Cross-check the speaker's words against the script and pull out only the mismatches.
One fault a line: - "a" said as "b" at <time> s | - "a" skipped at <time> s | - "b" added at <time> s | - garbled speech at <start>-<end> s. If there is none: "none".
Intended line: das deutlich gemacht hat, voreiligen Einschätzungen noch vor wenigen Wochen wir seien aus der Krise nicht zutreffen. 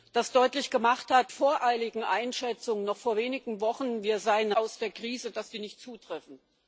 none